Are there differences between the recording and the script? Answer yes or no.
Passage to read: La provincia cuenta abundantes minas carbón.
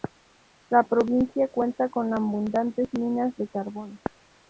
yes